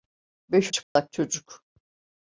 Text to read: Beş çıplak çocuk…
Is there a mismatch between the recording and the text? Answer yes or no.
no